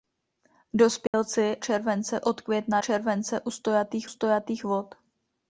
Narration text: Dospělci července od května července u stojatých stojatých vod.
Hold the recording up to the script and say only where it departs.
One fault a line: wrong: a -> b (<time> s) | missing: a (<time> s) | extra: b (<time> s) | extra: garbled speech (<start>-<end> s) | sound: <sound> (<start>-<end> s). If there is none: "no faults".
sound: dropout (1.1-1.1 s)